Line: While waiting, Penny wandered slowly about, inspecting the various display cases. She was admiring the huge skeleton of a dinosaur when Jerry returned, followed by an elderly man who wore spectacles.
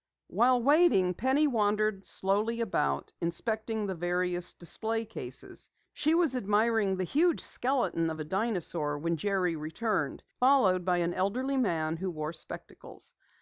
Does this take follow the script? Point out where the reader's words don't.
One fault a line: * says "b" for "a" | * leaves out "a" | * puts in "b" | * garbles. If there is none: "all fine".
all fine